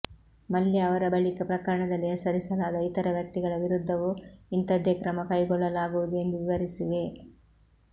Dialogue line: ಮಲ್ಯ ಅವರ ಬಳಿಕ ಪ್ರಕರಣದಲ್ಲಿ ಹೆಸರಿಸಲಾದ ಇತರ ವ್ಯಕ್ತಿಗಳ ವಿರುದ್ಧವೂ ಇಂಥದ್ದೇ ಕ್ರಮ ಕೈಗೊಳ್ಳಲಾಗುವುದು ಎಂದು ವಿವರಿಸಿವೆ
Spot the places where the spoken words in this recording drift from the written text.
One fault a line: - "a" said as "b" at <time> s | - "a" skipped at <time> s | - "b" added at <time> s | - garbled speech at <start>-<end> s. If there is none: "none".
none